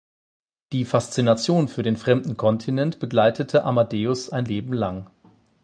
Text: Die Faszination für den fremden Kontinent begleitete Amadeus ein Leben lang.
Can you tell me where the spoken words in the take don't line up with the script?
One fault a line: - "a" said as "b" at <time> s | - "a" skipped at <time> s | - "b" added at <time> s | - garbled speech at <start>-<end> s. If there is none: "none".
none